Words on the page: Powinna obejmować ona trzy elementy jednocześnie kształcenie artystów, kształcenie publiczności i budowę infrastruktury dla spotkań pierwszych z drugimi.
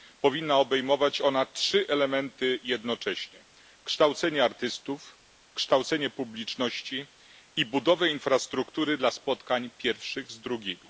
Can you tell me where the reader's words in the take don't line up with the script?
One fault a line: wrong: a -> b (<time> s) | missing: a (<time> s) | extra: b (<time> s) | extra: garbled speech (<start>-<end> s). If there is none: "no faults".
no faults